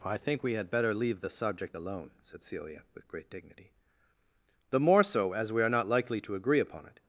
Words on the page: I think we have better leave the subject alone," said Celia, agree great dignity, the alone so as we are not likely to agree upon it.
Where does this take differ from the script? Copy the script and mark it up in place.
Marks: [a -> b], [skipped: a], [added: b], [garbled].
I think we [have -> had] better leave the subject alone," said Celia, [agree -> with] great dignity, the [alone -> more] so as we are not likely to agree upon it.